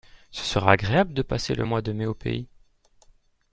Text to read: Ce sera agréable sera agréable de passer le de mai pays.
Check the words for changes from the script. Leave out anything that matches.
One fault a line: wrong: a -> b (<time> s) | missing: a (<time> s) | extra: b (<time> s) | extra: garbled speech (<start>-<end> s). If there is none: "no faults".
missing: sera agréable (1.1 s)
extra: mois (1.6 s)
extra: au (2.0 s)